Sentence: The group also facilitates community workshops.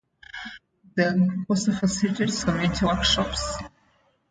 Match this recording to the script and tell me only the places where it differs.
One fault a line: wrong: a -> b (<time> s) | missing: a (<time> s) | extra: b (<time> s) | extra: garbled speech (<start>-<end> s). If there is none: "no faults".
no faults